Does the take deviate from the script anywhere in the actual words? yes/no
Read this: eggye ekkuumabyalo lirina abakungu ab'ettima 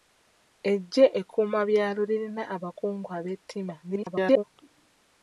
yes